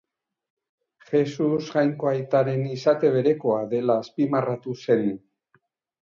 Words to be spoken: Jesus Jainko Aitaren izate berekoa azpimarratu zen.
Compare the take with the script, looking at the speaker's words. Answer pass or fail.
fail